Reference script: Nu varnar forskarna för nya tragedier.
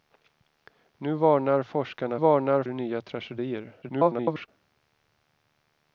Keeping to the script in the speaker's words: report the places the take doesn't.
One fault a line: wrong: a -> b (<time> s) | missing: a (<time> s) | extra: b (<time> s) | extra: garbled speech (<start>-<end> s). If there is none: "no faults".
wrong: för -> varnar (2.1 s)
extra: garbled speech (3.8-4.5 s)